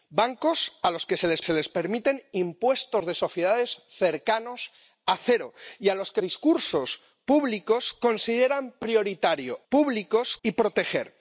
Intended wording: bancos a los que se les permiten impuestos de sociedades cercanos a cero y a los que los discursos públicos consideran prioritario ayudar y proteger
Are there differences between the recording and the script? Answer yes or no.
yes